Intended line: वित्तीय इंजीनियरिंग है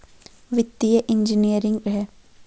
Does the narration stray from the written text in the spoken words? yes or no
no